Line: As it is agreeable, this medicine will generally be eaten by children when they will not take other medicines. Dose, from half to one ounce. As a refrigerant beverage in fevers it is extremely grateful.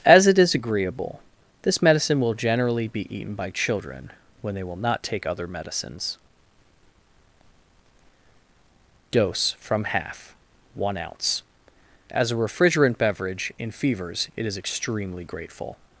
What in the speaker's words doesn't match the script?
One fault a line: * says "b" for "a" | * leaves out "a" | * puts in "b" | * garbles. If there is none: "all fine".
* leaves out "to"